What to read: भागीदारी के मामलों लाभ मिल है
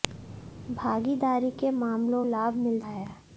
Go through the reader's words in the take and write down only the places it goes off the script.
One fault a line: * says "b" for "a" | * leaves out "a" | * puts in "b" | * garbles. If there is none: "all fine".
all fine